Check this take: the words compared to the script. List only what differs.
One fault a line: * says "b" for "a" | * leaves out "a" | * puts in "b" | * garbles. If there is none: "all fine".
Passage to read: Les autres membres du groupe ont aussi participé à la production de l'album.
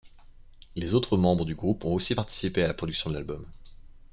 all fine